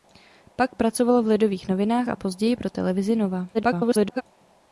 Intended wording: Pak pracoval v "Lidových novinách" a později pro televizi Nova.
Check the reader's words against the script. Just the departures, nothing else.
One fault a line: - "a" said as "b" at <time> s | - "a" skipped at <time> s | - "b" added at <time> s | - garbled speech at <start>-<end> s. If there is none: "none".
- garbled speech at 3.5-4.2 s